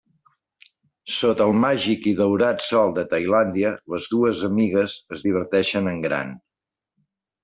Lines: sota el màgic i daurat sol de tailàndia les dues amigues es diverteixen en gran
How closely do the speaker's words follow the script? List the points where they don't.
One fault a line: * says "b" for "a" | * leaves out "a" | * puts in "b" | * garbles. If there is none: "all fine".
all fine